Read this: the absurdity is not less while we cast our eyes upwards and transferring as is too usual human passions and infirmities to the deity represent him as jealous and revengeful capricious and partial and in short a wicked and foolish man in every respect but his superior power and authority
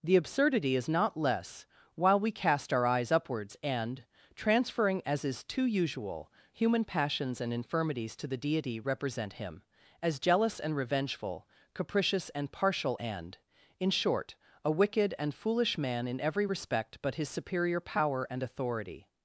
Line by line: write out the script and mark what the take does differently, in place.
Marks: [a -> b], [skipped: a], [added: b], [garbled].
the absurdity is not less while we cast our eyes upwards and transferring as is too usual human passions and infirmities to the deity represent him as jealous and revengeful capricious and partial and in short a wicked and foolish man in every respect but his superior power and authority